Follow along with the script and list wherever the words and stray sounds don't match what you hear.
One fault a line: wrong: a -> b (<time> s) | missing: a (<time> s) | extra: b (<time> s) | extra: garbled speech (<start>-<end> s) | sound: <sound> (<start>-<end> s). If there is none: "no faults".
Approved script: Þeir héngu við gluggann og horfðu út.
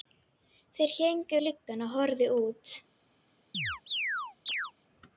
missing: við (1.4 s)
sound: chirp (3.5-4.7 s)